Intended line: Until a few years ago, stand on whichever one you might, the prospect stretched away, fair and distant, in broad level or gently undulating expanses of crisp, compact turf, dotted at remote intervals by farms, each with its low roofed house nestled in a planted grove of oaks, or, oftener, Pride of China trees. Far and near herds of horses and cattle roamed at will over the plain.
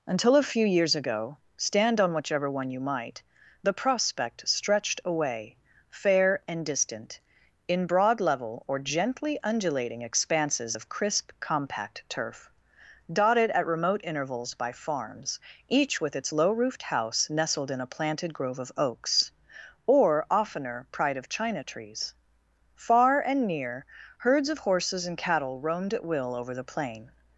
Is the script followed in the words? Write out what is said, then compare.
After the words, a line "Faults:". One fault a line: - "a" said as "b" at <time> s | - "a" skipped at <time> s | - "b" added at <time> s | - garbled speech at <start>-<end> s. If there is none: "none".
Until a few years ago, stand on whichever one you might, the prospect stretched away, fair and distant, in broad level or gently undulating expanses of crisp, compact turf, dotted at remote intervals by farms, each with its low roofed house nestled in a planted grove of oaks, or, oftener, Pride of China trees. Far and near herds of horses and cattle roamed at will over the plain.
Faults:
none